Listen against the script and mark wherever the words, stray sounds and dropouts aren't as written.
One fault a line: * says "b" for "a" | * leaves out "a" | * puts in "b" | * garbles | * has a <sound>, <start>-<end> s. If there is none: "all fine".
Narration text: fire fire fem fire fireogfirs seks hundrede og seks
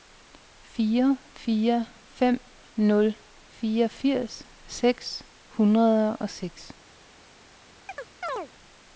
* says "nul" for "fire"
* has a chirp, 7.9-8.5 s